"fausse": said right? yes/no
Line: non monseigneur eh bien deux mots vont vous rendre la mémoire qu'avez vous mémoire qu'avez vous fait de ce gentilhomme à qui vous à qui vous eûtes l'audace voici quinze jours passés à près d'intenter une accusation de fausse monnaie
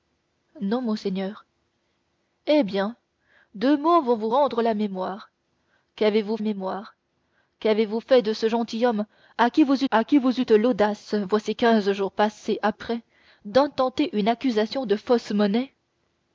yes